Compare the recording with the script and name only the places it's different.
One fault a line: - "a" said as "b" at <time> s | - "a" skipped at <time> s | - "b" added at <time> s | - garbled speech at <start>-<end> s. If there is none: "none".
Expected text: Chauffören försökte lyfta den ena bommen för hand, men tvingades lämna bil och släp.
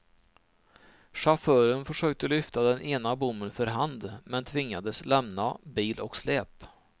none